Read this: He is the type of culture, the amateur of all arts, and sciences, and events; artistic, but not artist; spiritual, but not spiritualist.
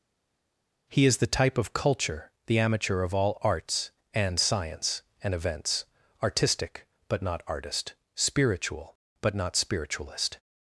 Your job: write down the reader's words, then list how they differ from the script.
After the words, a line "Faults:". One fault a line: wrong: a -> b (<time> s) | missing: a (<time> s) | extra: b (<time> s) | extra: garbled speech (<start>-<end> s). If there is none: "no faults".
He is the type of culture, the amateur of all arts, and science, and events; artistic, but not artist; spiritual, but not spiritualist.
Faults:
wrong: sciences -> science (4.4 s)